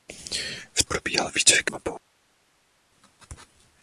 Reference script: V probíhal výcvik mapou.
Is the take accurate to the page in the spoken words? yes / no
yes